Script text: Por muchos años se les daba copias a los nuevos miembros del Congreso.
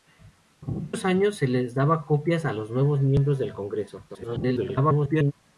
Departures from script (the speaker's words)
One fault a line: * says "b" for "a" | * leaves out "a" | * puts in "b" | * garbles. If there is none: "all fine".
* garbles